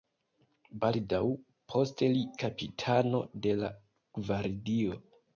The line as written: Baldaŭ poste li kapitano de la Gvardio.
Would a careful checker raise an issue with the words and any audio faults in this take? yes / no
no